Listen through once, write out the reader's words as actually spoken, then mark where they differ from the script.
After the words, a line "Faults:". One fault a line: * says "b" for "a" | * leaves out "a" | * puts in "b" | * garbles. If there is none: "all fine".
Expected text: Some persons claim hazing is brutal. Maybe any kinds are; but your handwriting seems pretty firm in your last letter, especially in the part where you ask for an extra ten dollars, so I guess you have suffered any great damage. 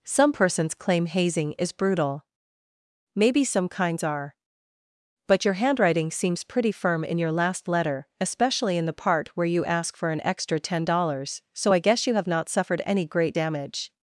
Some persons claim hazing is brutal. Maybe some kinds are; but your handwriting seems pretty firm in your last letter, especially in the part where you ask for an extra ten dollars, so I guess you have not suffered any great damage.
Faults:
* says "some" for "any"
* puts in "not"